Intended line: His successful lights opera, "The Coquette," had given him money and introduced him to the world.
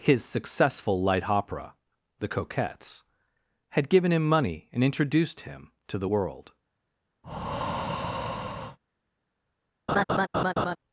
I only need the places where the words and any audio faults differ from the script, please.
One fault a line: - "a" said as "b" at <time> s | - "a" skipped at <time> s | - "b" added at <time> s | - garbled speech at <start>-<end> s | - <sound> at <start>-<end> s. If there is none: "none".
- "lights" said as "light" at 1.0 s
- "Coquette" said as "Coquettes" at 2.2 s
- breath at 7.2-8.8 s
- laugh at 9.9-10.8 s